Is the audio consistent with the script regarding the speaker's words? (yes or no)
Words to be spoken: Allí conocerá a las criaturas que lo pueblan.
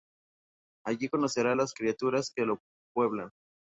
yes